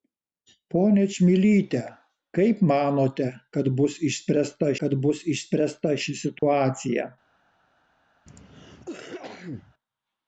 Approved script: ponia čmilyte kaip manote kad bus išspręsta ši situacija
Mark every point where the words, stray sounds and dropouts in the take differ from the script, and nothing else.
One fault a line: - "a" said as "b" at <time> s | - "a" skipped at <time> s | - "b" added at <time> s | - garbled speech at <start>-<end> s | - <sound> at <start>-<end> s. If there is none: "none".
- "kad bus išspręsta" added at 4.8 s
- dropout at 6.4-6.4 s
- cough at 8.3-9.7 s